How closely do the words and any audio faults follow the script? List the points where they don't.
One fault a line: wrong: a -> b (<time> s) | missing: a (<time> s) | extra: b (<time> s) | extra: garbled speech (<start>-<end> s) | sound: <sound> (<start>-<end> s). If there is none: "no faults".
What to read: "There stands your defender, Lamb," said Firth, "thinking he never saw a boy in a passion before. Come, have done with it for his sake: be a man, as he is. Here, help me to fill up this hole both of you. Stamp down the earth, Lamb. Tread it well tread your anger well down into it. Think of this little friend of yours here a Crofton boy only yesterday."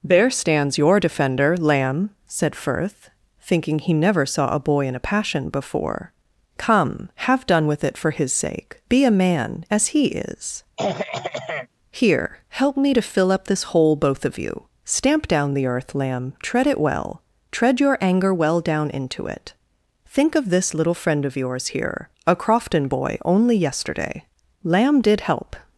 sound: throat clearing (10.8-11.7 s)
extra: Lamb did help (24.6 s)